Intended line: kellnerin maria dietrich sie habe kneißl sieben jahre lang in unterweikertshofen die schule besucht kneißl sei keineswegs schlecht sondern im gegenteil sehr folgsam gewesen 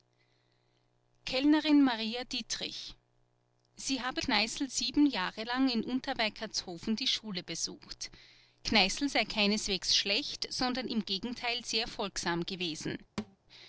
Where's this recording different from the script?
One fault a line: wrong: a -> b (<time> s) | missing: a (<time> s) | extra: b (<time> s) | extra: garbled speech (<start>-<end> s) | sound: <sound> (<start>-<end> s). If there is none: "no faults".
sound: thud (13.2-13.4 s)